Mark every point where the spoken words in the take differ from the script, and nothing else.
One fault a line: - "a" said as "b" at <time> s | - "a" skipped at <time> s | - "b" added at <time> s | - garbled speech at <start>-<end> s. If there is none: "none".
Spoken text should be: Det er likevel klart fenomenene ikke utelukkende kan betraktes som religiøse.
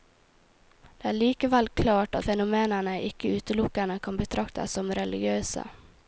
none